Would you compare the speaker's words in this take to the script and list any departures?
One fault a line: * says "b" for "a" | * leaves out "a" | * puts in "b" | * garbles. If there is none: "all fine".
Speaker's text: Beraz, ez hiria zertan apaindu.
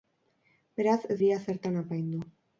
all fine